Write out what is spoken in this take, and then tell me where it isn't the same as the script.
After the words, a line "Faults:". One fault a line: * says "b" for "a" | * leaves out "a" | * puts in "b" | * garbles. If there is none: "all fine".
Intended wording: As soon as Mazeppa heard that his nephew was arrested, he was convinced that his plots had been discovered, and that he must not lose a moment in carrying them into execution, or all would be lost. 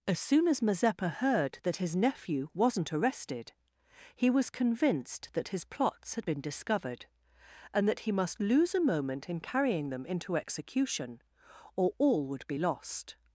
As soon as Mazeppa heard that his nephew wasn't arrested, he was convinced that his plots had been discovered, and that he must lose a moment in carrying them into execution, or all would be lost.
Faults:
* says "wasn't" for "was"
* leaves out "not"